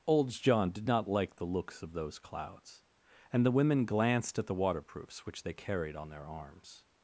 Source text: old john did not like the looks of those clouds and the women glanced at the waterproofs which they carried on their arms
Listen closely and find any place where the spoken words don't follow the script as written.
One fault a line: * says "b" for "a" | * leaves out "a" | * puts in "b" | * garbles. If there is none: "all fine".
all fine